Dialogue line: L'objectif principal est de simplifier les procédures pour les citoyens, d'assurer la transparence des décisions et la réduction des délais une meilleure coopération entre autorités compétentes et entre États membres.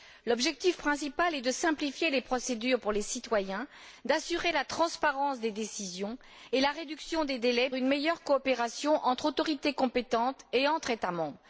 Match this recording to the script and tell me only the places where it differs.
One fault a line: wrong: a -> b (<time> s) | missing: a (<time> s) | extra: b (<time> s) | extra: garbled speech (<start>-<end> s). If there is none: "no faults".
no faults